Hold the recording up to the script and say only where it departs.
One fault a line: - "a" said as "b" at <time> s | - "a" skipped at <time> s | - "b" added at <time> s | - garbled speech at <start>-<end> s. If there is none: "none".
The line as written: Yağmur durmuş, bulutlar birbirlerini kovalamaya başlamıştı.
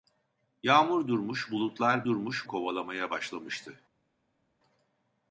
- "birbirlerini" said as "durmuş" at 2.0 s